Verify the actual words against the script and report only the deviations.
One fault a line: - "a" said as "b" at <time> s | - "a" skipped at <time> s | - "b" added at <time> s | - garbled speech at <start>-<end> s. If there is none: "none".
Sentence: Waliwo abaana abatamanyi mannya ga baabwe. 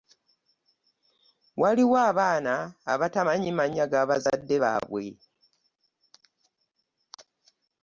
- "bazadde" added at 4.1 s